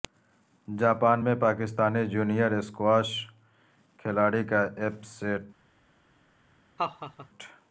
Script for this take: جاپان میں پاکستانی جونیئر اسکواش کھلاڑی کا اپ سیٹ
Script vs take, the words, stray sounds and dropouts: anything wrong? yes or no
yes